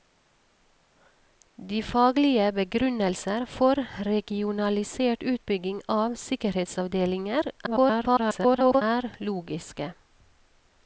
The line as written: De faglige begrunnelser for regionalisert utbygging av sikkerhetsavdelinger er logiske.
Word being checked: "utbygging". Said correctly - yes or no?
yes